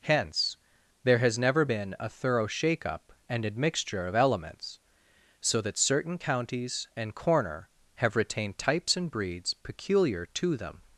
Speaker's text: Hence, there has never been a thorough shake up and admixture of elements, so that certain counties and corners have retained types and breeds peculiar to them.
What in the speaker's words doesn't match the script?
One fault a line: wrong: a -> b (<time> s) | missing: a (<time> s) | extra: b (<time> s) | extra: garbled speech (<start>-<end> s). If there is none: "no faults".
wrong: corners -> corner (7.1 s)